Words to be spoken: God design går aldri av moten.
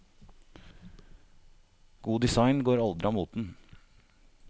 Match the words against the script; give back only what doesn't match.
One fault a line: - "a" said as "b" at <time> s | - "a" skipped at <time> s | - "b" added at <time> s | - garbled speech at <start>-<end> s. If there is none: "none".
none